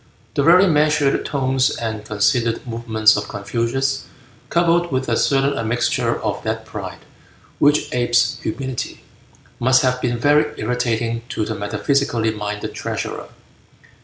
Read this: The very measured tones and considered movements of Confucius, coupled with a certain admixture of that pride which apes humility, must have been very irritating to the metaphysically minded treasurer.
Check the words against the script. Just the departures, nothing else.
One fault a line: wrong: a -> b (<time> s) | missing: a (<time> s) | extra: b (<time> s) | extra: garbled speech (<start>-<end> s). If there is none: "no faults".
no faults